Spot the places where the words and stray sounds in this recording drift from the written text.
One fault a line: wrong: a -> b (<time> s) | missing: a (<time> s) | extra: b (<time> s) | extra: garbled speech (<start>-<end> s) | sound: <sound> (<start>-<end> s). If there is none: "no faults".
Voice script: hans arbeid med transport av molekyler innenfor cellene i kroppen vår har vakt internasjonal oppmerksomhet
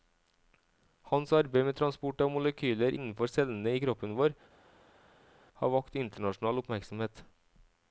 no faults